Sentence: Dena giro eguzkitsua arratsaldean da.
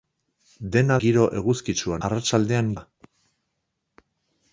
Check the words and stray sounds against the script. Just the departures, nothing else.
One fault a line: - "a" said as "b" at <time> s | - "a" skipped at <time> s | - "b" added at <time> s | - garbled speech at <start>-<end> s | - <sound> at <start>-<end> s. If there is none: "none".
none